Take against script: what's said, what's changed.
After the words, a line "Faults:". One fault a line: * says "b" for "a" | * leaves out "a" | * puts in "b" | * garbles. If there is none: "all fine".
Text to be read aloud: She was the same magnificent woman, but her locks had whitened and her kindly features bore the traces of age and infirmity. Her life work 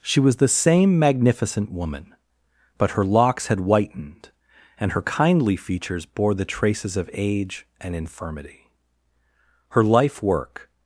She was the same magnificent woman, but her locks had whitened and her kindly features bore the traces of age and infirmity. Her life work
Faults:
all fine